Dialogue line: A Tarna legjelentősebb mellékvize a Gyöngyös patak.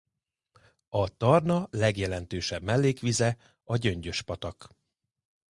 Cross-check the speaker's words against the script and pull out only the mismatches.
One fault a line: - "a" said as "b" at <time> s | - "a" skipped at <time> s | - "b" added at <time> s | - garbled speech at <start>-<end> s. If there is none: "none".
none